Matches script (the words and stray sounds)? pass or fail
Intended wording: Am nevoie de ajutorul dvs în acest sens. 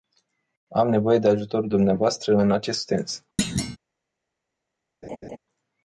fail